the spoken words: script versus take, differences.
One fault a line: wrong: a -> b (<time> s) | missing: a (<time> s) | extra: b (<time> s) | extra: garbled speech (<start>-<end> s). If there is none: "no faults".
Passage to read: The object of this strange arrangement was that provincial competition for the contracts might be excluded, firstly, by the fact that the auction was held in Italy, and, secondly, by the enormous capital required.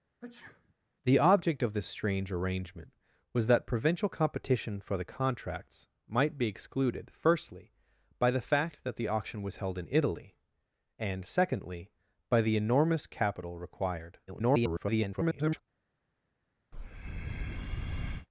extra: garbled speech (14.3-15.6 s)